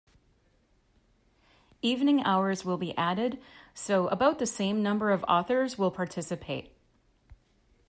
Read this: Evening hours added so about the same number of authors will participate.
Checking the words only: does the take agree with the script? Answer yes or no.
no